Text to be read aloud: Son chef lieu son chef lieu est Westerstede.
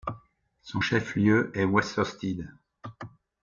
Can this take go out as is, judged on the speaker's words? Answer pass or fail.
fail